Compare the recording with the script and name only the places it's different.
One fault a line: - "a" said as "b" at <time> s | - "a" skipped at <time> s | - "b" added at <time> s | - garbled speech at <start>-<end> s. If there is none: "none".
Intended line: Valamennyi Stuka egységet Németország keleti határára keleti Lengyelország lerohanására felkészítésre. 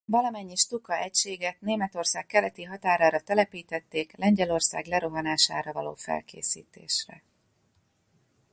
- "keleti" said as "telepítették" at 3.2 s
- "való" added at 5.7 s